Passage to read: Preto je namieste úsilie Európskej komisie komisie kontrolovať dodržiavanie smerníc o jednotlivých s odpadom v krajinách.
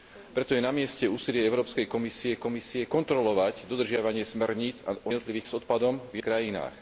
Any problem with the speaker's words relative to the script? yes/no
no